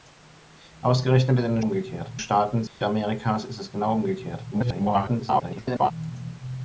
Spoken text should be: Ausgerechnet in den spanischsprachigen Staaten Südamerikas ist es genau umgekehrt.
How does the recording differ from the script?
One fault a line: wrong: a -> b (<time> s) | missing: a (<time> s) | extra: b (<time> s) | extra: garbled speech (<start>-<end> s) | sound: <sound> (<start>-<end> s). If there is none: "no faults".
wrong: spanischsprachigen -> umgekehrt (1.6 s)
sound: dropout (2.7-2.8 s)
extra: garbled speech (4.5-5.9 s)